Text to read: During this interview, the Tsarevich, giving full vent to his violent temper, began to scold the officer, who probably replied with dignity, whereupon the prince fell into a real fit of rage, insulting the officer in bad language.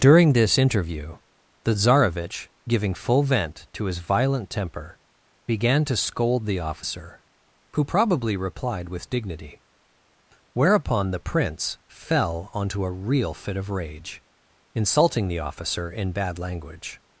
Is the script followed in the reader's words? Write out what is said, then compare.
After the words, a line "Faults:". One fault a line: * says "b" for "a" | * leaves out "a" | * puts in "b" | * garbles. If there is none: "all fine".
During this interview, the Tsarevich, giving full vent to his violent temper, began to scold the officer, who probably replied with dignity, whereupon the prince fell onto a real fit of rage, insulting the officer in bad language.
Faults:
* says "onto" for "into"